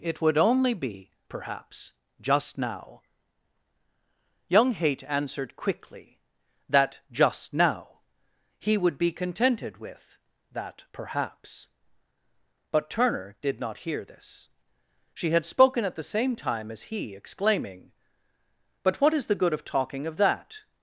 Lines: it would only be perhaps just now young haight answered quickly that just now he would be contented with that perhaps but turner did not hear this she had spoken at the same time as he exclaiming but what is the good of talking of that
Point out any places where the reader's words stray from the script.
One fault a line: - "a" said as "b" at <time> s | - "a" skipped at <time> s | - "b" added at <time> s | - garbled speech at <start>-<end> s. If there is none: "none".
none